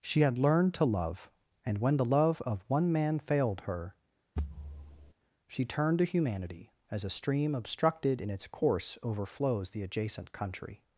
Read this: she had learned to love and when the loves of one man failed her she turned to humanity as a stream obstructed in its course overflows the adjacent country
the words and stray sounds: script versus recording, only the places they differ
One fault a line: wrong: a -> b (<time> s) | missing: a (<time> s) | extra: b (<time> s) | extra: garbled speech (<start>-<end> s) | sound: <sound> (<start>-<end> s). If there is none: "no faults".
wrong: loves -> love (2.0 s)
sound: thud (4.4-5.1 s)